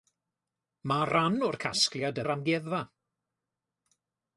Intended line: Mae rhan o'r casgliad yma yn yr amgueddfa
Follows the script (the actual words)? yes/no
no